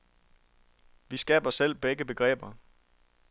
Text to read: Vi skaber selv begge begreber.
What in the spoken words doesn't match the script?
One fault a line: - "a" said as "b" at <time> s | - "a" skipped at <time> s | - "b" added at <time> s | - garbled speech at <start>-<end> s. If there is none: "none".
none